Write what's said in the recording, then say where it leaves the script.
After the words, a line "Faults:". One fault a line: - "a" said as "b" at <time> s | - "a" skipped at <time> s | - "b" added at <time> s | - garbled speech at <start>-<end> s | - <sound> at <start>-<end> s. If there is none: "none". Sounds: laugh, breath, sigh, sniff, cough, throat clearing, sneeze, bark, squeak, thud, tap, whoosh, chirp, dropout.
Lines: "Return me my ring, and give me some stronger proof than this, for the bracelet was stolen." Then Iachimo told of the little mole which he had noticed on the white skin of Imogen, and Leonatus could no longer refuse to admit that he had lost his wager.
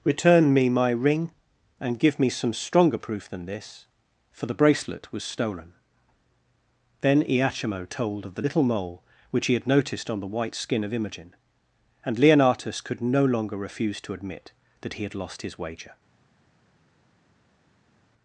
"Return me my ring, and give me some stronger proof than this, for the bracelet was stolen." Then Iachimo told of the little mole which he had noticed on the white skin of Imogen, and Leonatus could no longer refuse to admit that he had lost his wager.
Faults:
none